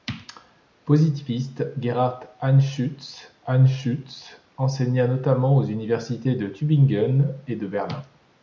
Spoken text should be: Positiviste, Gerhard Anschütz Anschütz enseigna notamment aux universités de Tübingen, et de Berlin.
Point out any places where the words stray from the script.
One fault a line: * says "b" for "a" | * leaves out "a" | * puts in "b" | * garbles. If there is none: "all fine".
all fine